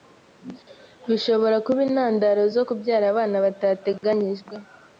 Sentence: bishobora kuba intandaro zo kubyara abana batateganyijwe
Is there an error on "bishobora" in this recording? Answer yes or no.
no